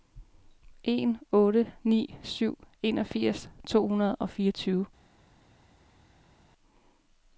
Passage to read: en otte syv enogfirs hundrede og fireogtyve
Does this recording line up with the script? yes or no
no